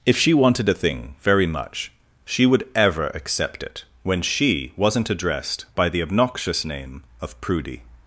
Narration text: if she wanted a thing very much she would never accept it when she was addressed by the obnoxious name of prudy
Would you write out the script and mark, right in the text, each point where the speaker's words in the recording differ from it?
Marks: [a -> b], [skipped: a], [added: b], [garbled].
if she wanted a thing very much she would [never -> ever] accept it when she [was -> wasn't] addressed by the obnoxious name of prudy